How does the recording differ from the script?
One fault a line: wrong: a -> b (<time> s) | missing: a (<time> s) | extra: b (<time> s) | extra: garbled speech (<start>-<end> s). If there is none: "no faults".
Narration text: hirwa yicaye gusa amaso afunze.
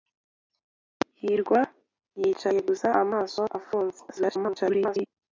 extra: garbled speech (4.1-5.1 s)